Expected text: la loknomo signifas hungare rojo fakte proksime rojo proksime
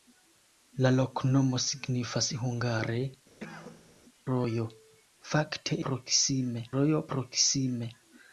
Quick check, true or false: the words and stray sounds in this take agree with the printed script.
false